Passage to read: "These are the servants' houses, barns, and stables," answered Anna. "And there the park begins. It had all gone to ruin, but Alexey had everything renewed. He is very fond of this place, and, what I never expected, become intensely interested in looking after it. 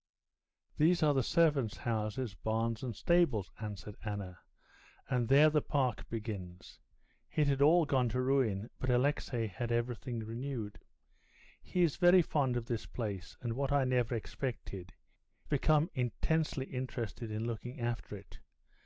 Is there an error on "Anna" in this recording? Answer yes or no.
no